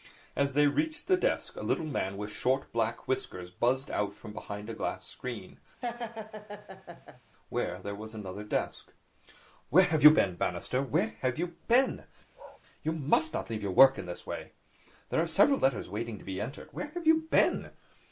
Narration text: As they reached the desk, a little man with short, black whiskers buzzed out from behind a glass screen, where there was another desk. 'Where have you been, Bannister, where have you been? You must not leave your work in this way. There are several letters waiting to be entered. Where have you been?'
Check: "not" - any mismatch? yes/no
no